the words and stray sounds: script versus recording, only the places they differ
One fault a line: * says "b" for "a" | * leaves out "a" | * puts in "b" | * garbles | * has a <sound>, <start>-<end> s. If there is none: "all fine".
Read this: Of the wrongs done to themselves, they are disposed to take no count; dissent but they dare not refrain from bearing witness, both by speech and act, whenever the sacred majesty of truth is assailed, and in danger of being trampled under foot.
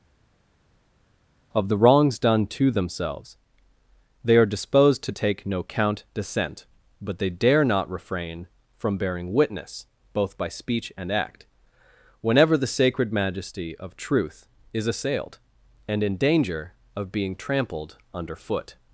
all fine